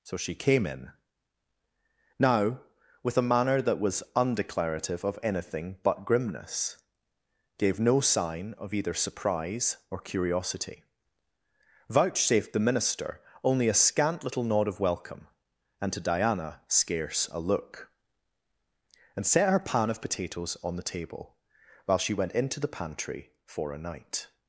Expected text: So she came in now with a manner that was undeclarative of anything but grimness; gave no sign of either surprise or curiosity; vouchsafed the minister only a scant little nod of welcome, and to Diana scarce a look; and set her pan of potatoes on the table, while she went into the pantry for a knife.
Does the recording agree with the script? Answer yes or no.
no